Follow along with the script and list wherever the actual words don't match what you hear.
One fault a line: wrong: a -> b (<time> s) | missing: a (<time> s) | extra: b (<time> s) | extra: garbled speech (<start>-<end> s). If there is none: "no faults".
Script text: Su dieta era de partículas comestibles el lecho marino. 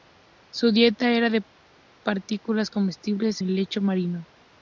no faults